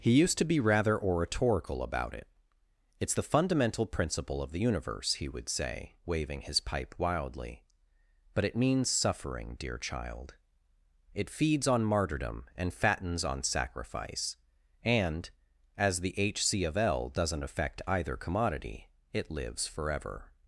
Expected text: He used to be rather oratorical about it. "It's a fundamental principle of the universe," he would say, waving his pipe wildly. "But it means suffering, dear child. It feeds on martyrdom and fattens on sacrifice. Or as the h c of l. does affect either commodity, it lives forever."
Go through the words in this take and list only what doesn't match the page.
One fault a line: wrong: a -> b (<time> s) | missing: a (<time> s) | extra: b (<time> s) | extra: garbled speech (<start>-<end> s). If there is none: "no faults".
wrong: a -> the (3.1 s)
wrong: Or -> And (14.8 s)
wrong: does -> doesn't (17.1 s)